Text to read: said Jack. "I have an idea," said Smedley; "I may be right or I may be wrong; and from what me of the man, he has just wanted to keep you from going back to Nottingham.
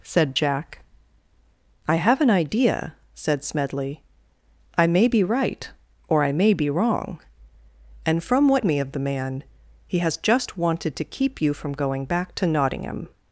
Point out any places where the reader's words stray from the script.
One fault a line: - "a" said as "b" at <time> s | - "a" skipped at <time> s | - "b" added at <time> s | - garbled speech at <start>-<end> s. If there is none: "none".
none